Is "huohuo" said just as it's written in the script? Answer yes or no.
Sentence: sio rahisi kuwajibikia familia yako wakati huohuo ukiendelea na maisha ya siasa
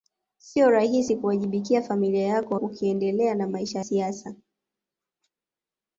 no